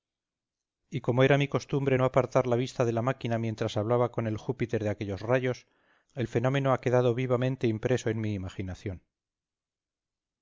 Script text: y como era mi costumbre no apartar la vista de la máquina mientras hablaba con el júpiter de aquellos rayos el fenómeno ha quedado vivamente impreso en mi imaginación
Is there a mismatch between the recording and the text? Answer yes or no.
no